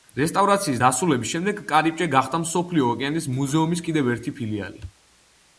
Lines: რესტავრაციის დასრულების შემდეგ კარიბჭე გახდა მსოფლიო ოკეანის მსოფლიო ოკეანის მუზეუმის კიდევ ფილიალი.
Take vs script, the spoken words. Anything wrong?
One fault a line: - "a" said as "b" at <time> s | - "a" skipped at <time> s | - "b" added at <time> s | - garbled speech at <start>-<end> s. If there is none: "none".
- "მსოფლიო ოკეანის" skipped at 3.3 s
- "ერთი" added at 4.1 s